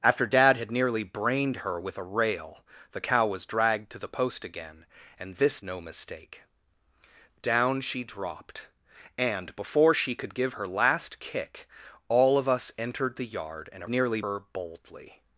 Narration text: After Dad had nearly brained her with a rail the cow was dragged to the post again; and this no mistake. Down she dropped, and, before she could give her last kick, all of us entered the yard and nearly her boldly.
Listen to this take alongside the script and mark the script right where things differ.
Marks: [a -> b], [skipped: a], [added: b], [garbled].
After Dad had nearly brained her with a rail the cow was dragged to the post again; and this no mistake. Down she dropped, and, before she could give her last kick, all of us entered the yard and nearly her boldly.